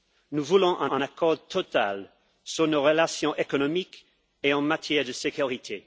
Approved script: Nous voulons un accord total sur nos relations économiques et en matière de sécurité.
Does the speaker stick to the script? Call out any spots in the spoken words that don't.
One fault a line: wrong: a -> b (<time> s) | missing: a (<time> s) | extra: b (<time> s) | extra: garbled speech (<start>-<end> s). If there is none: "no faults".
extra: un (0.9 s)